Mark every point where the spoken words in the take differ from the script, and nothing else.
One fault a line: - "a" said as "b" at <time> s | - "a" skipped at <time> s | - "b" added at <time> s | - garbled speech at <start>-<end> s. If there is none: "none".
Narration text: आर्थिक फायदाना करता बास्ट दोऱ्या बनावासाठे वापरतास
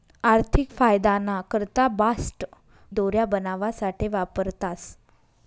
none